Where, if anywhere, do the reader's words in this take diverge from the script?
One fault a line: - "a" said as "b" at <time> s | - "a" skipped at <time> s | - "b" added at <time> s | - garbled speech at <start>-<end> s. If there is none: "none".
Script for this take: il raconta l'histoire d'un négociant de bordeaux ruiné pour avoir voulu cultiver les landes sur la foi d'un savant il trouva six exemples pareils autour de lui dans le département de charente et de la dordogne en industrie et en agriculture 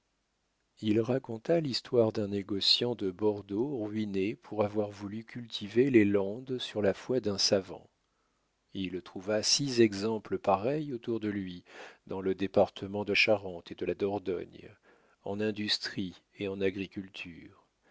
none